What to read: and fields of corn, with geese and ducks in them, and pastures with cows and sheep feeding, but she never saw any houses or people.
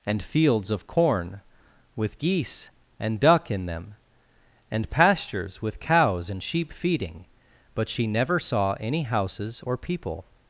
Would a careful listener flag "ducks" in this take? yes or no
yes